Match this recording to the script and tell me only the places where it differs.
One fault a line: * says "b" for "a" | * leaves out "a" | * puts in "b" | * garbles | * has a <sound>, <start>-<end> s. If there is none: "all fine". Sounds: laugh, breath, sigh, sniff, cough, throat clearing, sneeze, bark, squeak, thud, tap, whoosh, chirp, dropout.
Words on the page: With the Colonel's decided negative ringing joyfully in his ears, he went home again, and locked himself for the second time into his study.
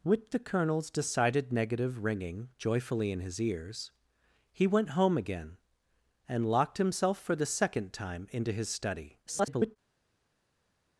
* garbles